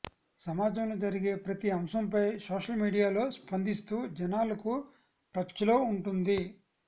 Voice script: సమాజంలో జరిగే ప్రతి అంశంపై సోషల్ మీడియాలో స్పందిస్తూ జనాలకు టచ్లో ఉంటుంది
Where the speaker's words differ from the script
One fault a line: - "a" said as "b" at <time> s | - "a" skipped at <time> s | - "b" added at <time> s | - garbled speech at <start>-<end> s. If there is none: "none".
none